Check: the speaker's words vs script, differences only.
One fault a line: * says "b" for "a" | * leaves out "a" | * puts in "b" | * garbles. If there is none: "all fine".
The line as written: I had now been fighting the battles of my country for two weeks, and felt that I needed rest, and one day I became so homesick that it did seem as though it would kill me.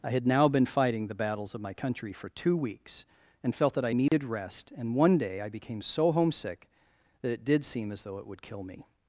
all fine